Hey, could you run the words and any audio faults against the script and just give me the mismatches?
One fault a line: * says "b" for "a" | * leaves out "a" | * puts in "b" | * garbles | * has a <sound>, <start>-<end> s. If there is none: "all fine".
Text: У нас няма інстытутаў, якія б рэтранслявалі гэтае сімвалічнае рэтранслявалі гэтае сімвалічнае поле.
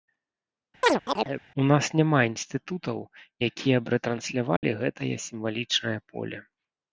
* has a chirp, 0.8-1.4 s
* has a dropout, 4.6-4.6 s
* leaves out "рэтранслявалі гэтае сімвалічнае"